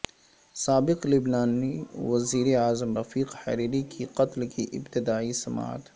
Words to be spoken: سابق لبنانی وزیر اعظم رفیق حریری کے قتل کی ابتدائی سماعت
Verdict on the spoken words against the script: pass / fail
pass